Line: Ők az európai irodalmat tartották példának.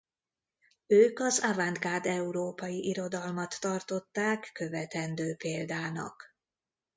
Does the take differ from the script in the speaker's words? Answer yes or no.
yes